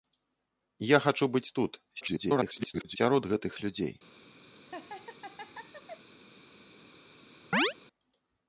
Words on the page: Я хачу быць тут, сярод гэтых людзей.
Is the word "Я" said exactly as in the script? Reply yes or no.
yes